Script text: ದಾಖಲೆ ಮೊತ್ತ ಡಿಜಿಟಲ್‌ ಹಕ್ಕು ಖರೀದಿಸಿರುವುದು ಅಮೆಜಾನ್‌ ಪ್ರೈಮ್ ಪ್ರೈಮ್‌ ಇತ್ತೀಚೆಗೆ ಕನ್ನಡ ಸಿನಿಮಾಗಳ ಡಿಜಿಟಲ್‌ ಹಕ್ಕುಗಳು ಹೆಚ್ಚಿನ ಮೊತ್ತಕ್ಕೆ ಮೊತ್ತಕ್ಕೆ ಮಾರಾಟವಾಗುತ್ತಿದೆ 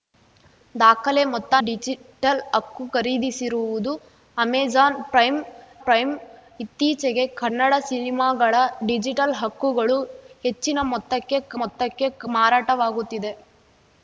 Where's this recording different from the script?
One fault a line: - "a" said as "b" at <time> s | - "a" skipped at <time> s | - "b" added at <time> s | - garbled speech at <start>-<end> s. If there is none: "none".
none